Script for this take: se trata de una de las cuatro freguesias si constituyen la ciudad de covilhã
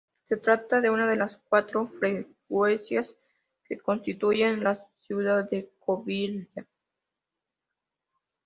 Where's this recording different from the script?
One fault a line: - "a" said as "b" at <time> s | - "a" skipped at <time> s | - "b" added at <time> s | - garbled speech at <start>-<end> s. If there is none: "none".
- "si" said as "que" at 3.6 s